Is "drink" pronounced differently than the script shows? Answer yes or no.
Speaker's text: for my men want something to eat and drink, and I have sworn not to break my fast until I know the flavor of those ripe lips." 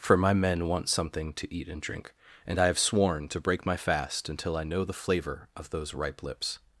no